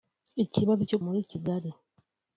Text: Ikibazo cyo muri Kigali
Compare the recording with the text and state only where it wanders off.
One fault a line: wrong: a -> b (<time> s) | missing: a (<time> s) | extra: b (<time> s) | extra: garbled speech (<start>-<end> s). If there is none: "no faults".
no faults